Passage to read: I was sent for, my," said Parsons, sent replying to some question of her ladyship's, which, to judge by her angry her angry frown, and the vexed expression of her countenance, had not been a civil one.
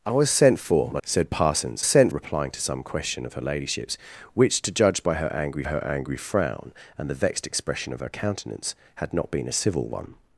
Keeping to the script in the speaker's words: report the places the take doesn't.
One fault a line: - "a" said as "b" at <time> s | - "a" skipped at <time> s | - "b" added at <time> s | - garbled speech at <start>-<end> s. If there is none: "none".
none